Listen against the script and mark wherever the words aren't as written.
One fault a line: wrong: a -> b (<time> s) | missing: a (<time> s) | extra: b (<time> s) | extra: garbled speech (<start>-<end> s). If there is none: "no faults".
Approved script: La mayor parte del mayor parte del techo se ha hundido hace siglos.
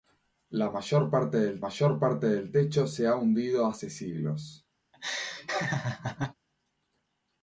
no faults